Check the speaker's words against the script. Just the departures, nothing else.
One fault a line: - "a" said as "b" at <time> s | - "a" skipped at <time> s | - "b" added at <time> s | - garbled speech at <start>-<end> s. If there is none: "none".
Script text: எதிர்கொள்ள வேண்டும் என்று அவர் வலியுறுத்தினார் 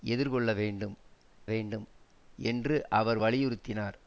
- "வேண்டும்" added at 1.5 s